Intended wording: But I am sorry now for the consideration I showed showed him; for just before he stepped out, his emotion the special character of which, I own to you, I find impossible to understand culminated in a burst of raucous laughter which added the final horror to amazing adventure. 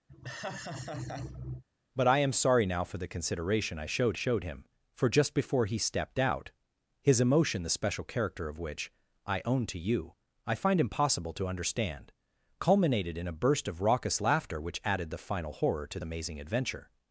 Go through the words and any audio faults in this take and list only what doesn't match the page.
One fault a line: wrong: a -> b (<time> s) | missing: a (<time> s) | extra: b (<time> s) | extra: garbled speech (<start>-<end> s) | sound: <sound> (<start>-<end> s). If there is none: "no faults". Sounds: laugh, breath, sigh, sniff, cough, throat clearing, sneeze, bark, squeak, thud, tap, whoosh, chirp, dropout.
sound: laugh (0.1-1.6 s)